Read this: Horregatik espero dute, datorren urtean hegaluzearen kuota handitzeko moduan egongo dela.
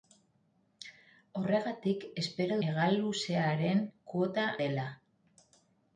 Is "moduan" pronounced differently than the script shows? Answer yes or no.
yes